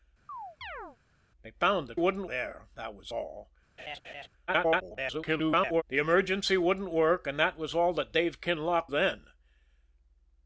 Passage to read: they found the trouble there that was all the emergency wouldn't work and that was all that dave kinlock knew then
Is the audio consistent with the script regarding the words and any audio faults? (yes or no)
no